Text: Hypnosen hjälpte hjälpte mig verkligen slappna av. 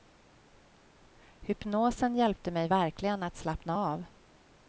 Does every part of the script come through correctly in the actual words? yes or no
no